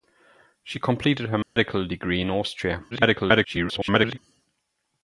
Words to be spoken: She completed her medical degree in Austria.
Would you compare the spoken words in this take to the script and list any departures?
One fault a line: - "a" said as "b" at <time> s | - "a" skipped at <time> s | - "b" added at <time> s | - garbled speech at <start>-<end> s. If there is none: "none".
- garbled speech at 2.9-4.2 s